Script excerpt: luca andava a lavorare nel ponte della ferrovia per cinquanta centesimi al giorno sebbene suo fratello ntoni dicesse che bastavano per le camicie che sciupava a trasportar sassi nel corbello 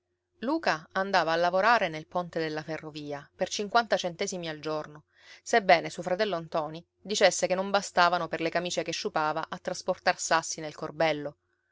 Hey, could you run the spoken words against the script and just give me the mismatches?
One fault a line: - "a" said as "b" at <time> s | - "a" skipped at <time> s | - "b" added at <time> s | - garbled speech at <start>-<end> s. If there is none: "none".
- "non" added at 7.5 s